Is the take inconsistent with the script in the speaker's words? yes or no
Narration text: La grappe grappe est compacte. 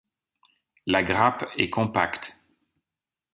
yes